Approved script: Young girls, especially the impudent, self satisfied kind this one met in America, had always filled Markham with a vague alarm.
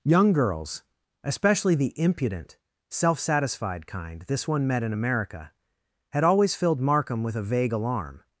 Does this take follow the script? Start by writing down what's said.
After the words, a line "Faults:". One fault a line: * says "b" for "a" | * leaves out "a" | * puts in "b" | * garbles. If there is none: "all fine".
Young girls, especially the impudent, self satisfied kind this one met in America, had always filled Markham with a vague alarm.
Faults:
all fine